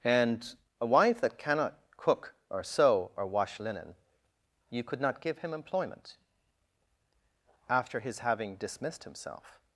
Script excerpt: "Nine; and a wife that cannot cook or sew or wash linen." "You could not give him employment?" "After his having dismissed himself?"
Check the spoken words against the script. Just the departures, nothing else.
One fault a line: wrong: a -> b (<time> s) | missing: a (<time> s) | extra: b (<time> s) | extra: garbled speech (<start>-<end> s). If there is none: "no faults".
missing: Nine (0.0 s)